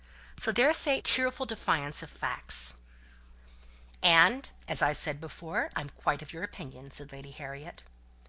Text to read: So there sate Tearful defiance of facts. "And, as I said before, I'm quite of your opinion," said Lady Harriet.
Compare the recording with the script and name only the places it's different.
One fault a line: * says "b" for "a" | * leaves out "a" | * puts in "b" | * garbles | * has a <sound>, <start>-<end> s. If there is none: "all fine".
all fine